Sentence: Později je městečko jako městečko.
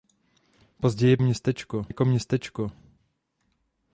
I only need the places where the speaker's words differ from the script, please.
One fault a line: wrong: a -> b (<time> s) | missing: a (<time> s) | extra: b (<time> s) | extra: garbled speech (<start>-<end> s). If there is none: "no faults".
no faults